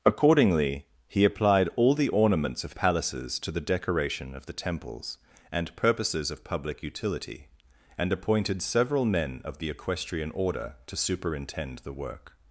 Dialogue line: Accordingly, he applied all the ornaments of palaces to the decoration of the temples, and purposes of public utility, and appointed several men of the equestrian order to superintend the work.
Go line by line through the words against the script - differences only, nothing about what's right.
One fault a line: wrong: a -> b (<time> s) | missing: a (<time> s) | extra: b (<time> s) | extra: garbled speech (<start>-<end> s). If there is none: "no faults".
no faults